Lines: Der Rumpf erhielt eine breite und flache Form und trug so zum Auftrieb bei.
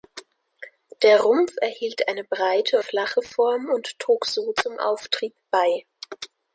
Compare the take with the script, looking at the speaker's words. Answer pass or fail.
fail